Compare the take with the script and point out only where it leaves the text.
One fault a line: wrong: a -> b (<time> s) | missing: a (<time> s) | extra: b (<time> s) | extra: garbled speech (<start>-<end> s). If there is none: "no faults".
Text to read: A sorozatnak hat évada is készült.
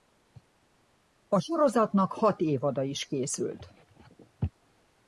no faults